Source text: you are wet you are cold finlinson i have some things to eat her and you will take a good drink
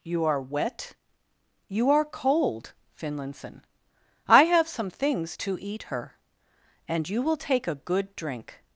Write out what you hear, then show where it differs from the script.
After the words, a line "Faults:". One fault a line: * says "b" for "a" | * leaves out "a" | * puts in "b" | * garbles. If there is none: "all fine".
you are wet you are cold finlinson i have some things to eat her and you will take a good drink
Faults:
all fine